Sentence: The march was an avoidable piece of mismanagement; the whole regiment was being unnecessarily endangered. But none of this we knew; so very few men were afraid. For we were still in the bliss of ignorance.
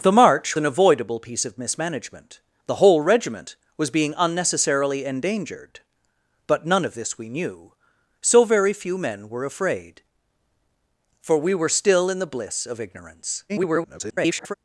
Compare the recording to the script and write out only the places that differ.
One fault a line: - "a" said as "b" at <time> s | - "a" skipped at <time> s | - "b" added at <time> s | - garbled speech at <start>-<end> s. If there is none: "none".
- "was" skipped at 0.6 s
- garbled speech at 13.5-14.5 s